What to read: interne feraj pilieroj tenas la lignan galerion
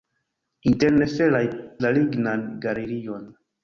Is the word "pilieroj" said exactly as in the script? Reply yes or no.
no